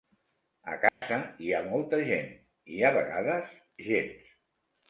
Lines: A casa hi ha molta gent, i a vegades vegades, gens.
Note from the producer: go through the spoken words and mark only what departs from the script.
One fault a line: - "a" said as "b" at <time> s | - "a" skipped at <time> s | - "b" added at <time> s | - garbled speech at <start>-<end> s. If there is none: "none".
- "vegades" skipped at 3.5 s